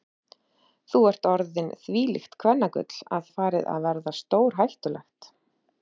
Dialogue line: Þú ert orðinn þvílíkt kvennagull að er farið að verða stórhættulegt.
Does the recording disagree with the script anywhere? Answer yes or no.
no